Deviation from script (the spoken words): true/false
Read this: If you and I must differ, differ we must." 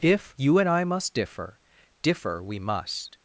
false